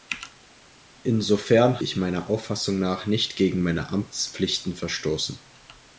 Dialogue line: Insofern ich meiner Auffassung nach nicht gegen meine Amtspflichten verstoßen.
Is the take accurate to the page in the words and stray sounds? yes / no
yes